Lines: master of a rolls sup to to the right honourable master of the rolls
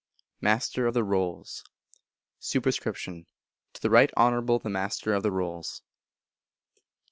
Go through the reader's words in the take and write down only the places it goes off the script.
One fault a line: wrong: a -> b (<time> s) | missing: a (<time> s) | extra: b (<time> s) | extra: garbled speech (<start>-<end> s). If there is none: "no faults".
wrong: a -> the (0.9 s)
missing: to (3.2 s)
extra: the (4.6 s)